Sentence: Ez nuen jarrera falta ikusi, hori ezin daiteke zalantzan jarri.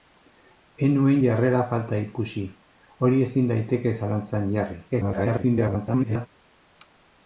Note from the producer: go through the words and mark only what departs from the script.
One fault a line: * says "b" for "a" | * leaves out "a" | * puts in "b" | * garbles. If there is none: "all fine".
* garbles